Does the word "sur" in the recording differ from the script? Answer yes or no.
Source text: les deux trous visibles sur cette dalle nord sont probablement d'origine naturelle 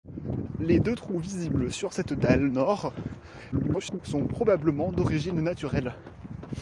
no